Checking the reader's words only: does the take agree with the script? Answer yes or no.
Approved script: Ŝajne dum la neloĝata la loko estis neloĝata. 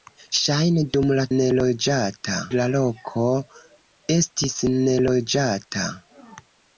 yes